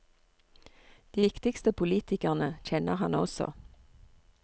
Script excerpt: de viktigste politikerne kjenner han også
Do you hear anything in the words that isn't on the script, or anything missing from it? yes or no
no